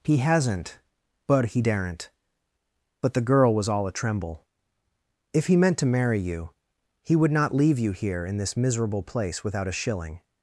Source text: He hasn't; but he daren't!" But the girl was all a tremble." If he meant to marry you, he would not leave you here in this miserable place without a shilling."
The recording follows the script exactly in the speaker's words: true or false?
true